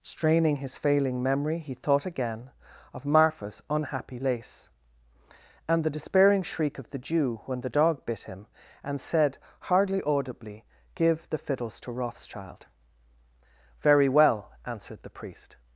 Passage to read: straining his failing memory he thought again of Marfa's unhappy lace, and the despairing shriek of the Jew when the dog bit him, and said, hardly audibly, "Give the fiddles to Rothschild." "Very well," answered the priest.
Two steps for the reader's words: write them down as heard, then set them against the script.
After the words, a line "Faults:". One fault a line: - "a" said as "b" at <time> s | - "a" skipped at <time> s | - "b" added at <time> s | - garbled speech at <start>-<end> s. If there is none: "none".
straining his failing memory he thought again of Marfa's unhappy lace, and the despairing shriek of the Jew when the dog bit him, and said, hardly audibly, "Give the fiddles to Rothschild." "Very well," answered the priest.
Faults:
none